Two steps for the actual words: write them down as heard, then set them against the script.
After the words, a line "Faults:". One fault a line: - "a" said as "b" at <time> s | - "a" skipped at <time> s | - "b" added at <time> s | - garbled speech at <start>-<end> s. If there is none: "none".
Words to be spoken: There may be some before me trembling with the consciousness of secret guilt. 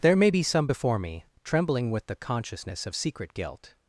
There may be some before me trembling with the consciousness of secret guilt.
Faults:
none